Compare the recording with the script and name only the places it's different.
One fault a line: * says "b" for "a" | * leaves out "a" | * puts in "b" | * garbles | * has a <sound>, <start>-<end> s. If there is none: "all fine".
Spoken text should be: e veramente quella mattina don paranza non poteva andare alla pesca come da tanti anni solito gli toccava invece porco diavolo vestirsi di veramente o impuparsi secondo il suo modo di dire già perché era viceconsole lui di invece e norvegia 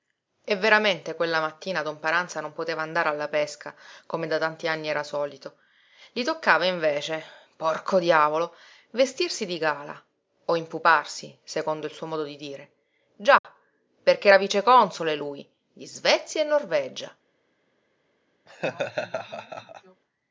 * puts in "era"
* says "gala" for "veramente"
* has a dropout, 13.4-13.4 s
* says "svezia" for "invece"
* has a laugh, 18.5-20.0 s